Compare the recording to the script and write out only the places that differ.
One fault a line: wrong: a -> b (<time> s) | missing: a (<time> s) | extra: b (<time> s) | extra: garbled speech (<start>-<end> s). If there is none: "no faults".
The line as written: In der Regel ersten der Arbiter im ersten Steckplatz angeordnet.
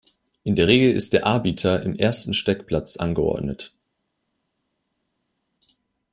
wrong: ersten -> ist (0.9 s)